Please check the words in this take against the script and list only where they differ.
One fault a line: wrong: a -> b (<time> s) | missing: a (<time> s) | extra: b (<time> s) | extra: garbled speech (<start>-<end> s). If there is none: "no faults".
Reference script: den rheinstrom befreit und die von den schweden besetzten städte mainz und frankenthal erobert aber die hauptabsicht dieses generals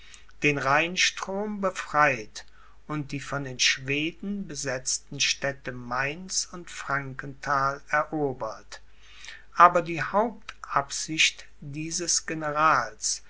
no faults